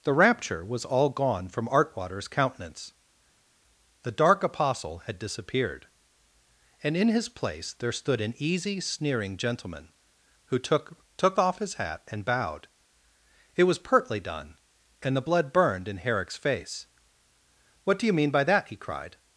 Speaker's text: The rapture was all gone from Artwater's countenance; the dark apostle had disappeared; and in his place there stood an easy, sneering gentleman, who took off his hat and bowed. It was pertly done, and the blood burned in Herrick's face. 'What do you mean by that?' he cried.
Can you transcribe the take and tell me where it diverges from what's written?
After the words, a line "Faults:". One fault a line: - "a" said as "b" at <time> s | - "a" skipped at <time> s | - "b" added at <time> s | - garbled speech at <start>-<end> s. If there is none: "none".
The rapture was all gone from Artwater's countenance; the dark apostle had disappeared; and in his place there stood an easy, sneering gentleman, who took took off his hat and bowed. It was pertly done, and the blood burned in Herrick's face. 'What do you mean by that?' he cried.
Faults:
- "took" added at 11.2 s